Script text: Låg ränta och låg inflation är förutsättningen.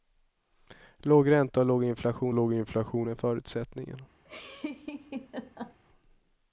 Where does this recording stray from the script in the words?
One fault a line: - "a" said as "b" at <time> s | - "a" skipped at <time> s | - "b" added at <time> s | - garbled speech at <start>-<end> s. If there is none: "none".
- "låg inflation" added at 2.3 s